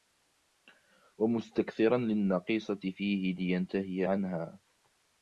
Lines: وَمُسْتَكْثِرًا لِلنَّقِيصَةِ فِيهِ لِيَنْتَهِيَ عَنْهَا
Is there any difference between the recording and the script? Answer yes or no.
no